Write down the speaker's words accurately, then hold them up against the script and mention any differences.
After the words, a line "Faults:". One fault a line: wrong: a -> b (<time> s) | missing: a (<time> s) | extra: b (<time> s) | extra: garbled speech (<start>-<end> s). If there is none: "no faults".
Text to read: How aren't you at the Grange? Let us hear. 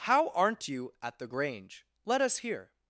How aren't you at the Grange? Let us hear.
Faults:
no faults